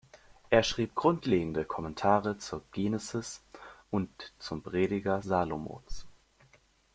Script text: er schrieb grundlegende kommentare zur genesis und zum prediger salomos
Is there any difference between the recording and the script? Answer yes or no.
no